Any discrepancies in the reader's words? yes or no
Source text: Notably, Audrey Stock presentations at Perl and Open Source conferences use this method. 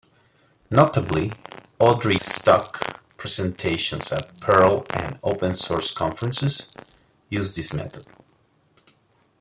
no